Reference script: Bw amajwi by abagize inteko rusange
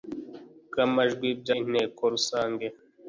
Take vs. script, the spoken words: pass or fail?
fail